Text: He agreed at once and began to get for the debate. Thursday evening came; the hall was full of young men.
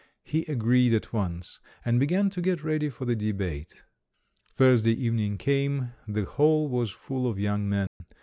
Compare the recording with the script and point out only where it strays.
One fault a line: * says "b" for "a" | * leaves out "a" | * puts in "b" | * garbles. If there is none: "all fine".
* puts in "ready"